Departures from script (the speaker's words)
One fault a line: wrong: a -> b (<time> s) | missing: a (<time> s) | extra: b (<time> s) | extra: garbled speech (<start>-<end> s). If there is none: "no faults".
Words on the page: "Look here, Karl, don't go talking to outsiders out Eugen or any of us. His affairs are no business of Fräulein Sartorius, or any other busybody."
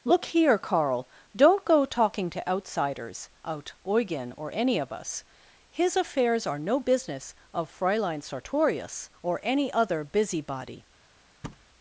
no faults